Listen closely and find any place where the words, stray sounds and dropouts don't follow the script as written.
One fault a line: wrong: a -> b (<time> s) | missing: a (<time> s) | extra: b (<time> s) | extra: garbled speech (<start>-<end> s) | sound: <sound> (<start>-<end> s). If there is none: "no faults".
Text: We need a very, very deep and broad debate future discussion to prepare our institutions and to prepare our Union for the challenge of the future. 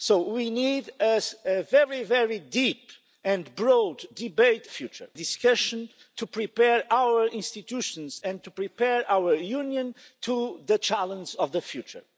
no faults